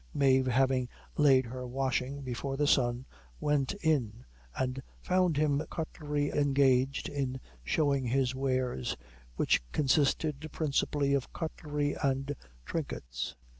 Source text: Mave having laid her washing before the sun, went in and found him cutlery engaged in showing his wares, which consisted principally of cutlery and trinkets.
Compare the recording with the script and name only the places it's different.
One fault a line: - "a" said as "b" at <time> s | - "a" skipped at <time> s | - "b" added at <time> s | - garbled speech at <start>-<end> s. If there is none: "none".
none